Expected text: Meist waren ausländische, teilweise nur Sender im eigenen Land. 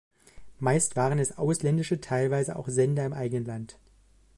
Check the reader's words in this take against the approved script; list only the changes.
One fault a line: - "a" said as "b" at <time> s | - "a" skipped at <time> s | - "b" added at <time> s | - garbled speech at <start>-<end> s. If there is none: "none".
- "es" added at 1.2 s
- "nur" said as "auch" at 2.5 s